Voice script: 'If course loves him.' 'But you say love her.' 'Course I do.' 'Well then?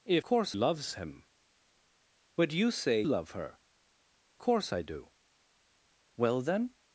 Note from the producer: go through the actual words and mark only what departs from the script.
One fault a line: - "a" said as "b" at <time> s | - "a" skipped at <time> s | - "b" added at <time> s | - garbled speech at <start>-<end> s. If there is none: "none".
none